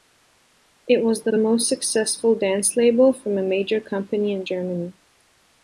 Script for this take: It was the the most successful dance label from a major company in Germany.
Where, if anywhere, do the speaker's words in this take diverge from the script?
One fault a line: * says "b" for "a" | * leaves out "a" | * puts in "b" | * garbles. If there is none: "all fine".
all fine